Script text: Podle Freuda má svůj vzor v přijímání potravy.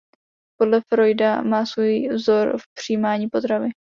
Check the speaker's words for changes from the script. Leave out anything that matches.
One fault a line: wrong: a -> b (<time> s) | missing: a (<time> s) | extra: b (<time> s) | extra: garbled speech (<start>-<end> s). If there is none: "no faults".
no faults